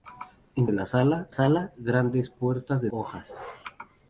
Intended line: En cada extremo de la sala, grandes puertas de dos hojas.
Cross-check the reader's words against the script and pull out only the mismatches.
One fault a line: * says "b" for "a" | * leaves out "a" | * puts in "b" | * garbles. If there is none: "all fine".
* leaves out "cada extremo"
* puts in "sala"
* leaves out "dos"